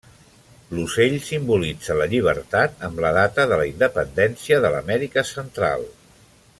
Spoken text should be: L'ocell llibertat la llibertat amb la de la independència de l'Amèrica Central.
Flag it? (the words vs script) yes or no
yes